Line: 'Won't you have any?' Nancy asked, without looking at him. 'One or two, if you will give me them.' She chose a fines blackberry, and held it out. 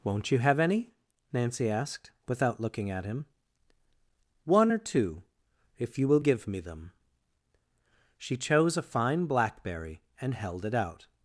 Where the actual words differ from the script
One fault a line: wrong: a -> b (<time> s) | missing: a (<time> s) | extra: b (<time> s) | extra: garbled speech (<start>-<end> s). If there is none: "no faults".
wrong: fines -> fine (8.8 s)